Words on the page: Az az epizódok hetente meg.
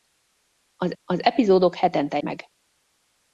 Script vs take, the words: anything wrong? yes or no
no